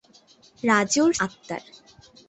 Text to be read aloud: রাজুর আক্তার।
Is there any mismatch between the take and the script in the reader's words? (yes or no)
no